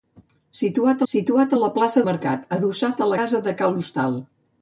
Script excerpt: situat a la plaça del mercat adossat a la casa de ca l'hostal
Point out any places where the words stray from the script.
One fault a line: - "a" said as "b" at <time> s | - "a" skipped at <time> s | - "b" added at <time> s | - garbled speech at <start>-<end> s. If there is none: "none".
- "situat" added at 1.1 s
- "del" skipped at 2.0 s
- "la" skipped at 3.1 s